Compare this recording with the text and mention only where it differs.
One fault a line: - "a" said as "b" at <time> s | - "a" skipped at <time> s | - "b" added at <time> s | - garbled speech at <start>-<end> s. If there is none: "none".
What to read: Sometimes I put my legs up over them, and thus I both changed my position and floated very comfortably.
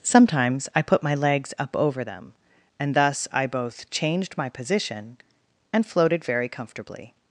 none